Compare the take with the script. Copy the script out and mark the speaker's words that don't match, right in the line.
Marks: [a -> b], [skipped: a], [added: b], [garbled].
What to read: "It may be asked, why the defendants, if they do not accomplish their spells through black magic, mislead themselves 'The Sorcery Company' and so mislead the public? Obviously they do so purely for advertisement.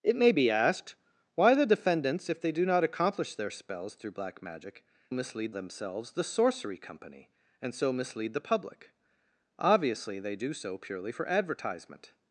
"It may be asked, why the defendants, if they do not accomplish their spells through black magic, mislead themselves 'The Sorcery Company' and so mislead the public? Obviously they do so purely for advertisement.